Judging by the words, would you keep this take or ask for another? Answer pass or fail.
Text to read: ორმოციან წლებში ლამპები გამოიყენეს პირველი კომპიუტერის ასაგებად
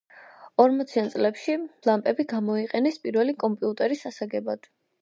pass